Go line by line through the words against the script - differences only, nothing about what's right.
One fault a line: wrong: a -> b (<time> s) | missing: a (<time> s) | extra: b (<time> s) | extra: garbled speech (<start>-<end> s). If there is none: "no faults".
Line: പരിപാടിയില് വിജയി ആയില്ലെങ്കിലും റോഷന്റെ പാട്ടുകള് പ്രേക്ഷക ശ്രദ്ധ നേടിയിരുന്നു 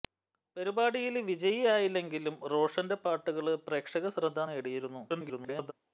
extra: garbled speech (5.1-5.7 s)